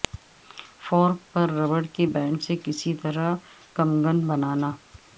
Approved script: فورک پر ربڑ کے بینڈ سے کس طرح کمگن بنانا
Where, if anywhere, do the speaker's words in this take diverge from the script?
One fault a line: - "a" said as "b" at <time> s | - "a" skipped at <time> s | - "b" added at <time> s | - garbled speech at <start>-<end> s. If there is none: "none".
none